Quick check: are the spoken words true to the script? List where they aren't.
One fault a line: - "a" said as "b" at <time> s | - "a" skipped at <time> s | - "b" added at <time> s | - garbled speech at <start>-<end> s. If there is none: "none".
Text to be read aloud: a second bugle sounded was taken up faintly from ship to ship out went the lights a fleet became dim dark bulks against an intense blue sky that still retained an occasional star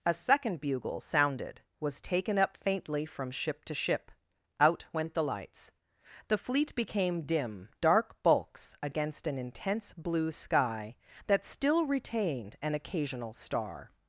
- "a" said as "the" at 6.3 s